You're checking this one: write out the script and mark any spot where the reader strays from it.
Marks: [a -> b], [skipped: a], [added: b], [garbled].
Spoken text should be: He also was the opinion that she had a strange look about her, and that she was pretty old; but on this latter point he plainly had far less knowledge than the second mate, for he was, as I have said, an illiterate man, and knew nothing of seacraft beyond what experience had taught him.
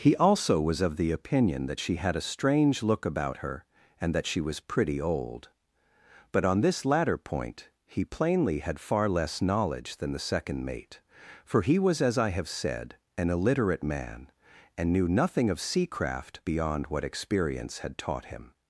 He also was [added: of] the opinion that she had a strange look about her, and that she was pretty old; but on this latter point he plainly had far less knowledge than the second mate, for he was, as I have said, an illiterate man, and knew nothing of seacraft beyond what experience had taught him.